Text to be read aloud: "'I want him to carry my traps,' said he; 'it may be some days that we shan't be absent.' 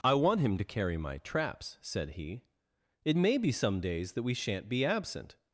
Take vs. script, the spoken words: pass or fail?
pass